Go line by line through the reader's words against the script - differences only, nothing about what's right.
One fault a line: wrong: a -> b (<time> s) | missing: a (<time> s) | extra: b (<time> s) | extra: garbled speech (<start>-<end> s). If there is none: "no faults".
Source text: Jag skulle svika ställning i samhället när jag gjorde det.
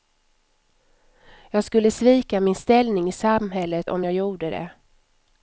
extra: min (2.4 s)
wrong: när -> om (3.9 s)